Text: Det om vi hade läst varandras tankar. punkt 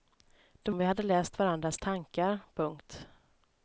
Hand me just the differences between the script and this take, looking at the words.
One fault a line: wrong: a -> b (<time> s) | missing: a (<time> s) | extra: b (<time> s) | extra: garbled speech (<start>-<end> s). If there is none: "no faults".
no faults